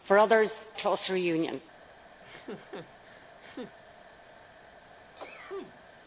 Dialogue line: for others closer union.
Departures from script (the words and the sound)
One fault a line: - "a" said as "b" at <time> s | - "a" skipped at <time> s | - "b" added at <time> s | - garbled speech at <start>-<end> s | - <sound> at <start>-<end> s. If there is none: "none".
- laugh at 2.2-3.8 s
- sneeze at 5.2-5.9 s